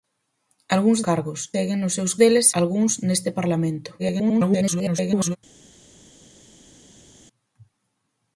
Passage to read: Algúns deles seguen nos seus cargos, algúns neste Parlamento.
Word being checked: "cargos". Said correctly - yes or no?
no